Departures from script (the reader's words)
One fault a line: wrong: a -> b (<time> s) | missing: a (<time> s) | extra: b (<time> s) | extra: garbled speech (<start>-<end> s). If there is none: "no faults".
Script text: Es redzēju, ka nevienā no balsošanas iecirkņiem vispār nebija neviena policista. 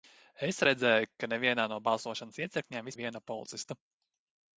missing: vispār nebija (2.9 s)